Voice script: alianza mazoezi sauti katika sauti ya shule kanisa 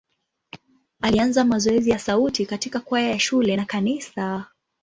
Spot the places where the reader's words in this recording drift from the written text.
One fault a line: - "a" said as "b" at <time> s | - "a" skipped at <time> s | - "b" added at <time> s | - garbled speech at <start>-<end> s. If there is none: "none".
- "ya" added at 1.9 s
- "sauti" said as "kwaya" at 2.8 s
- "na" added at 3.5 s